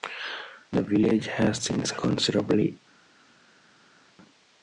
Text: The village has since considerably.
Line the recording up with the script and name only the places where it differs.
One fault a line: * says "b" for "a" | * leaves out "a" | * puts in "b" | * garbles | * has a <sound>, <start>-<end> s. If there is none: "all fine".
all fine